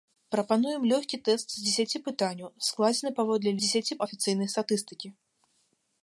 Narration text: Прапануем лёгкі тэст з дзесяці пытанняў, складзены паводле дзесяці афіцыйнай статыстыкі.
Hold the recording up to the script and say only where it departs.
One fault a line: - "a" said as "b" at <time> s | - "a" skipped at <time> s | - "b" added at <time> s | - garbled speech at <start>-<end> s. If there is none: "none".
none